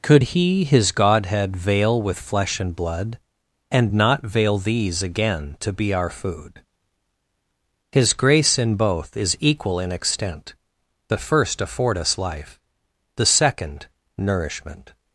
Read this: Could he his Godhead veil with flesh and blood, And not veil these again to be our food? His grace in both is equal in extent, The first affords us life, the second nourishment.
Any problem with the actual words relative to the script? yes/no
yes